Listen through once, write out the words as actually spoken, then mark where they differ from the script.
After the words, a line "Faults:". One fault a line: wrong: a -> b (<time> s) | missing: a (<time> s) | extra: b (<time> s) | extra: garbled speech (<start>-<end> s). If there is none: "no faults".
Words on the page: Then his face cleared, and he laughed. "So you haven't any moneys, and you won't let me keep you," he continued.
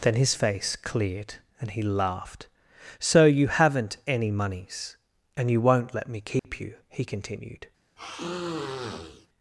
Then his face cleared, and he laughed. "So you haven't any moneys, and you won't let me keep you," he continued.
Faults:
no faults